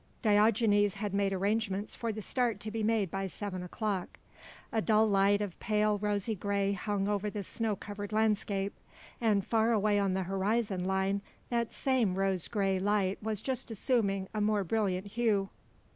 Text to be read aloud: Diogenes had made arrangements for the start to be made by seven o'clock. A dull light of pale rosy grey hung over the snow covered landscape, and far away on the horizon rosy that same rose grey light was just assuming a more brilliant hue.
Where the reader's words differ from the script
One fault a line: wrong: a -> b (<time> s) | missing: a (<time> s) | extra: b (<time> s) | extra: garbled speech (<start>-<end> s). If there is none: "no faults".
wrong: rosy -> line (10.8 s)